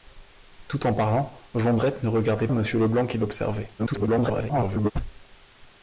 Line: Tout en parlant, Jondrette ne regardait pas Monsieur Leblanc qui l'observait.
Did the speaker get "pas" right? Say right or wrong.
wrong